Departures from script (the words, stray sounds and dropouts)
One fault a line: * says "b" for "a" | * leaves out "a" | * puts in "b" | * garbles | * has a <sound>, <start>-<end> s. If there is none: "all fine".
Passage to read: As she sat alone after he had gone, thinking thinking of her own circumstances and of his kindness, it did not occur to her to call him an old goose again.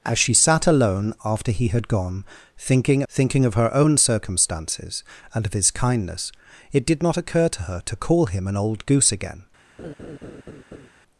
* has a laugh, 9.8-10.9 s